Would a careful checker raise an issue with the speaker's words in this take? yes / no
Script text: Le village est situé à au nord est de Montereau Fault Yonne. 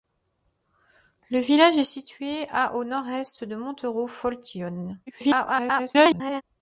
yes